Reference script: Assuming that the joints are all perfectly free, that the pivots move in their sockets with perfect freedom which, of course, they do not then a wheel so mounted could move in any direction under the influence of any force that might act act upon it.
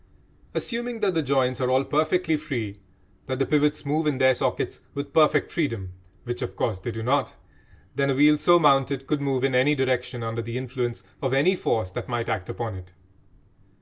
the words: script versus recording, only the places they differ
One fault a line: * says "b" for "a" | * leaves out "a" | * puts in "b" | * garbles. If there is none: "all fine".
* leaves out "act"